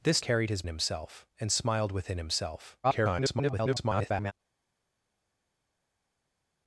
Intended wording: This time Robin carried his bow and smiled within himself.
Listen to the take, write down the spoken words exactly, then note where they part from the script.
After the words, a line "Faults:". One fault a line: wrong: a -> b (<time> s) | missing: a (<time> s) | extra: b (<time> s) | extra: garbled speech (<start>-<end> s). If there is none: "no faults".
This carried his himself and smiled within himself. [garbled]
Faults:
missing: time Robin (0.2 s)
wrong: bow -> himself (0.7 s)
extra: garbled speech (2.8-4.3 s)